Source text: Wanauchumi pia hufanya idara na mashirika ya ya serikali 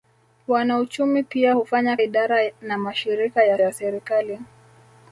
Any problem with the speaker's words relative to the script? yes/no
no